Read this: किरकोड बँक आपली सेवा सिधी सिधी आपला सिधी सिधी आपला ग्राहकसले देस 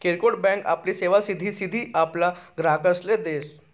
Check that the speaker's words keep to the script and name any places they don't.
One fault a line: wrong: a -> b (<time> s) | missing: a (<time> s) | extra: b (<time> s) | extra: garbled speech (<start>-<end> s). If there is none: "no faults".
missing: सिधी सिधी आपला (2.3 s)